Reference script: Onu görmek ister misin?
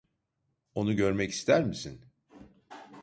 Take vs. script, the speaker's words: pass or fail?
pass